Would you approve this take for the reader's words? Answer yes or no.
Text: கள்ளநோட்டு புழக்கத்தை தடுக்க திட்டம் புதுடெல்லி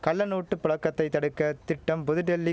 yes